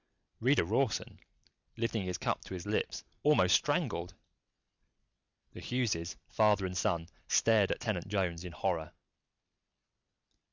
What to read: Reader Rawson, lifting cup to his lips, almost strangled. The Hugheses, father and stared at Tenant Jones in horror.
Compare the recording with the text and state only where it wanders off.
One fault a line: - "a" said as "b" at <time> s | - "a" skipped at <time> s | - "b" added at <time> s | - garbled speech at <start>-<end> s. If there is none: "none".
- "his" added at 2.0 s
- "son" added at 6.8 s